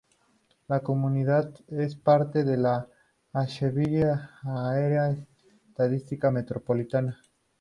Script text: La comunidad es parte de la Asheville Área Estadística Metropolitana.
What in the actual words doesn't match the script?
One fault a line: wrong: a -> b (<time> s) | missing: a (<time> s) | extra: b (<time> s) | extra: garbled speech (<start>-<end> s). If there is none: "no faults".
no faults